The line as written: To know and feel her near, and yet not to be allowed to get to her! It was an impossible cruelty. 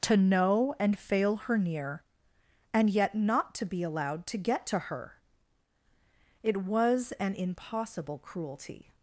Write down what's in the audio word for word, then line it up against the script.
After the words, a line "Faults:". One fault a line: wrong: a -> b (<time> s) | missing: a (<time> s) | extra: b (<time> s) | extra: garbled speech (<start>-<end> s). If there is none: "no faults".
To know and fail her near, and yet not to be allowed to get to her! It was an impossible cruelty.
Faults:
wrong: feel -> fail (1.0 s)